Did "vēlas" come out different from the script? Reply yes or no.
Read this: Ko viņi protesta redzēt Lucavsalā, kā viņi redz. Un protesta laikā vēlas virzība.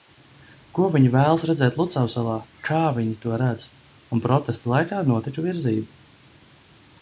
yes